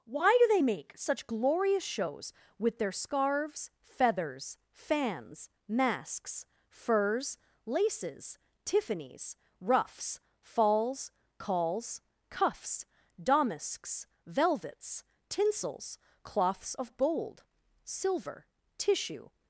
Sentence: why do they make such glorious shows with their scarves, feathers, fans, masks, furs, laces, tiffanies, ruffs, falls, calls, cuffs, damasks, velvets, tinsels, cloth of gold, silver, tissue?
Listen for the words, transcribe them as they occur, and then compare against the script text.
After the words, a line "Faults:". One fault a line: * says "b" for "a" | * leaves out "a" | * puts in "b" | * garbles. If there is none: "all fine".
why do they make such glorious shows with their scarves, feathers, fans, masks, furs, laces, tiffanies, ruffs, falls, calls, cuffs, damasks, velvets, tinsels, cloths of gold, silver, tissue?
Faults:
* says "cloths" for "cloth"